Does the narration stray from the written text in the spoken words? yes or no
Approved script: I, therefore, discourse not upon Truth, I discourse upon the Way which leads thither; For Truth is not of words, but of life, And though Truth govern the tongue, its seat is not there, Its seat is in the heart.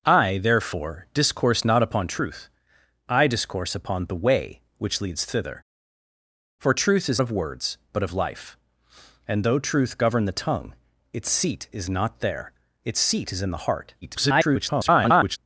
yes